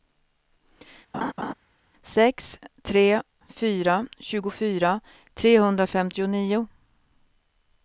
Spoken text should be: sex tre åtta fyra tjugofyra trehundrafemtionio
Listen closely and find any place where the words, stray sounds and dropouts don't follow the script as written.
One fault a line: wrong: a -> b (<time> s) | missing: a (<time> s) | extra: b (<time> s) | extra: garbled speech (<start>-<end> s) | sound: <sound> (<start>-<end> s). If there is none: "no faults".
sound: laugh (1.1-1.5 s)
missing: åtta (3.2 s)